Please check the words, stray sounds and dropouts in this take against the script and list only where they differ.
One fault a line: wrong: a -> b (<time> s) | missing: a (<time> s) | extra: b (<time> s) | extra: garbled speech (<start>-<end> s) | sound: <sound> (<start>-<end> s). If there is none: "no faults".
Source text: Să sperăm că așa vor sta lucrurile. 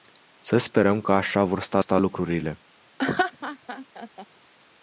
extra: sta (1.8 s)
sound: laugh (3.0-4.3 s)